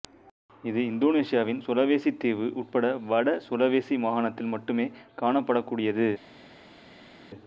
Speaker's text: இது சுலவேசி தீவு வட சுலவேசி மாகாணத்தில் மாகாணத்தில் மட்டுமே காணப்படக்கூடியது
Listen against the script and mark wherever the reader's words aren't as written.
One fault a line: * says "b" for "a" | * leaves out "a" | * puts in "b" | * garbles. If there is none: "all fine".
* puts in "இந்தோனேசியாவின்"
* puts in "உட்பட"
* leaves out "மாகாணத்தில்"